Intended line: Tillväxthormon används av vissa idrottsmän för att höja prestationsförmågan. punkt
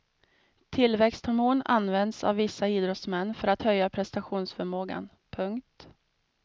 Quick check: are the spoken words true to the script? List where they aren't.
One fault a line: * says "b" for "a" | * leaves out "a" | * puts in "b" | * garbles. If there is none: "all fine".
all fine